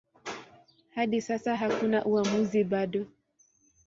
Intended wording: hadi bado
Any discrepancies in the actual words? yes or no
yes